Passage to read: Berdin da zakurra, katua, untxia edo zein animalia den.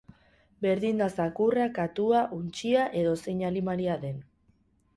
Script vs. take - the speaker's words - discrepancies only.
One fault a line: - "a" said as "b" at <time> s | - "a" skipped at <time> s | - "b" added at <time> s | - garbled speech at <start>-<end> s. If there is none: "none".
none